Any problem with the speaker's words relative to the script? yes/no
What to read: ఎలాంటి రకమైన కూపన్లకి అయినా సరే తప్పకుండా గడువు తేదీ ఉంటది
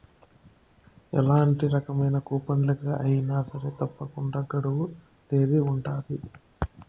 no